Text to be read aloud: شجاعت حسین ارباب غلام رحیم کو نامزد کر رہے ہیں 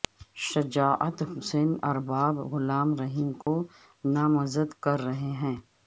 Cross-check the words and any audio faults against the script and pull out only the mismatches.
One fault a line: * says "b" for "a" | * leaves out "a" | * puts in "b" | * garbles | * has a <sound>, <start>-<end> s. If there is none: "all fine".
* has a dropout, 3.4-3.5 s